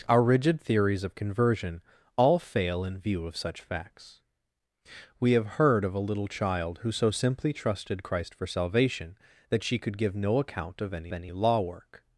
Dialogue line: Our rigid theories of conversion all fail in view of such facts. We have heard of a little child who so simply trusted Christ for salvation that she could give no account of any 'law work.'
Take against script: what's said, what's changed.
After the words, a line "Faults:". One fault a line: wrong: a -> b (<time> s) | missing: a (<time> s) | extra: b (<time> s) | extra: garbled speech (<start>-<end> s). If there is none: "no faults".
Our rigid theories of conversion all fail in view of such facts. We have heard of a little child who so simply trusted Christ for salvation that she could give no account of any any 'law work.'
Faults:
extra: any (11.1 s)